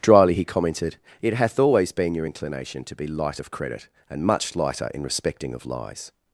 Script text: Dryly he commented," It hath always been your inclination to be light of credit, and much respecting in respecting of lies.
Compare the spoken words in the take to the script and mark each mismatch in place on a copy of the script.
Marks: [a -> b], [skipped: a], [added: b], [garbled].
Dryly he commented," It hath always been your inclination to be light of credit, and much [respecting -> lighter] in respecting of lies.